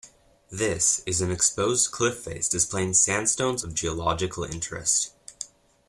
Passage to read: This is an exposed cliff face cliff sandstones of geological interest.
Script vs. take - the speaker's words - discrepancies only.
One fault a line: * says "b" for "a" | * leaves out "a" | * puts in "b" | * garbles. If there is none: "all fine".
* says "displaying" for "cliff"